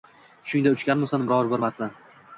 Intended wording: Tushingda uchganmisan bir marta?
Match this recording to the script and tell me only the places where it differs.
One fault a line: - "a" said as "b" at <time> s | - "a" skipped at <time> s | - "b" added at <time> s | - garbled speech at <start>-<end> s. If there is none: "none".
- "biror" added at 1.3 s